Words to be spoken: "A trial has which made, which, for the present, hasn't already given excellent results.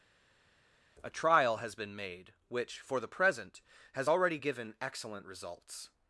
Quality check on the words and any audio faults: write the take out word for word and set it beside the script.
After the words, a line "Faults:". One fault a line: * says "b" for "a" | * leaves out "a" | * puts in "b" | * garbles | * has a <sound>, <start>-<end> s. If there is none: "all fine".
"A trial has been made, which, for the present, has already given excellent results.
Faults:
* says "been" for "which"
* says "has" for "hasn't"